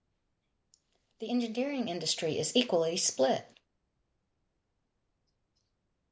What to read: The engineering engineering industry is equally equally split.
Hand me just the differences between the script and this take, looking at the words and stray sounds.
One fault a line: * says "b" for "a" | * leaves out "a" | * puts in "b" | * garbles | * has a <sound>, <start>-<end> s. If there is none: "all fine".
* leaves out "engineering"
* leaves out "equally"